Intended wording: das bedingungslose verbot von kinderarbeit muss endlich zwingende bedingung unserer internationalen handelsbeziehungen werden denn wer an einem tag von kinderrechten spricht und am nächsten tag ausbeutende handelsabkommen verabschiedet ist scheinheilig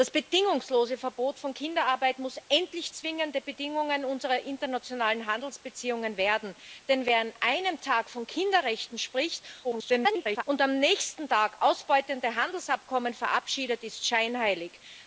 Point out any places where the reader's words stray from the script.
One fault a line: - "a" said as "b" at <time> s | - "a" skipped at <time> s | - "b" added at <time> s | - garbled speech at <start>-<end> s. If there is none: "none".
- garbled speech at 9.6-10.4 s